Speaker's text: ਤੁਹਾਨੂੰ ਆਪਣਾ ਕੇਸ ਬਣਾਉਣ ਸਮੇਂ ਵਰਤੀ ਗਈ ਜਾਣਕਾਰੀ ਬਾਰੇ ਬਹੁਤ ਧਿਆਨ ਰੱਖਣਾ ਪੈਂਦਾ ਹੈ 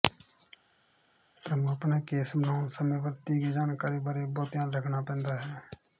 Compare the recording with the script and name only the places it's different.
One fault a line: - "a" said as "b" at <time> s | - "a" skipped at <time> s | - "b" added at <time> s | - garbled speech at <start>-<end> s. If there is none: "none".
none